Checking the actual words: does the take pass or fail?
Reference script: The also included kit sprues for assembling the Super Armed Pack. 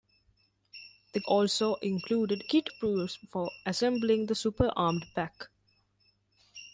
pass